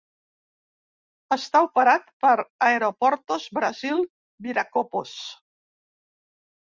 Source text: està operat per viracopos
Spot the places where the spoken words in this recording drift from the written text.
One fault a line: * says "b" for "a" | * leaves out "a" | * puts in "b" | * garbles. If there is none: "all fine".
* puts in "aeroportos brasil"